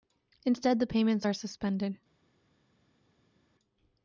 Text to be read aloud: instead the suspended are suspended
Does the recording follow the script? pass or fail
fail